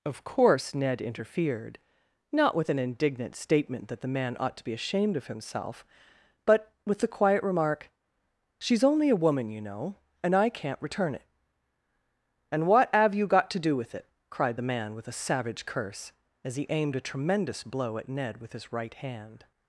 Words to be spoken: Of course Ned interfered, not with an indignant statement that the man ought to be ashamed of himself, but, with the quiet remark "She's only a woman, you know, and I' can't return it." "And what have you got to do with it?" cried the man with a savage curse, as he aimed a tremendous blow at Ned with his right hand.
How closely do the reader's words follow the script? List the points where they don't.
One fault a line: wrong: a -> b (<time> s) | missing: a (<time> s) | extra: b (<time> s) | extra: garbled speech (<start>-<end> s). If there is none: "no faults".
no faults